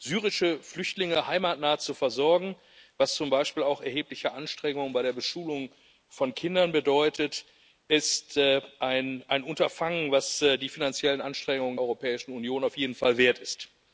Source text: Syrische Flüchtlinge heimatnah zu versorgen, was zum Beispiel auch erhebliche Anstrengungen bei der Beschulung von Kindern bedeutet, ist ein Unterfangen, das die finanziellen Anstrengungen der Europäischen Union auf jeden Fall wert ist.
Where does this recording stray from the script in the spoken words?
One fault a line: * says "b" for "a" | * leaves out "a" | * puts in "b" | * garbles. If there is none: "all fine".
* leaves out "der"